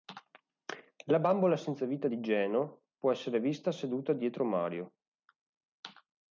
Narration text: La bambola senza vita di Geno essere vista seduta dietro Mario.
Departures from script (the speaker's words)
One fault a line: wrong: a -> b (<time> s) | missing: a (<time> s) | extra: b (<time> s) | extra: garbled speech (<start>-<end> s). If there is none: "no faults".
extra: può (3.0 s)